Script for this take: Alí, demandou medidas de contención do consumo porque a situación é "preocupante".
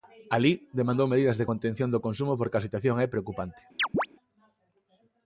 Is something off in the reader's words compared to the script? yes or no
no